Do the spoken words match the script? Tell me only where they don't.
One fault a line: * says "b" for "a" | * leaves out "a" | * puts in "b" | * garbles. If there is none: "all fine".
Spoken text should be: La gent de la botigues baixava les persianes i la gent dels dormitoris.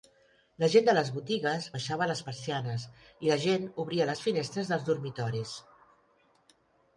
* says "les" for "la"
* puts in "obria les finestres"